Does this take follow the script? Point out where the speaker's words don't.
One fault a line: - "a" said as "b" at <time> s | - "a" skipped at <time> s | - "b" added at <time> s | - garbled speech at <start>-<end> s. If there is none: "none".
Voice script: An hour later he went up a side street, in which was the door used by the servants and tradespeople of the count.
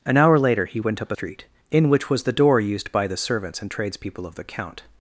- "side" skipped at 1.1 s